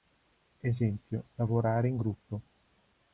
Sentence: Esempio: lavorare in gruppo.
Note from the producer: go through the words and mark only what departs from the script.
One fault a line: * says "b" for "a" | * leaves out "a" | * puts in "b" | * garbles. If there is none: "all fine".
all fine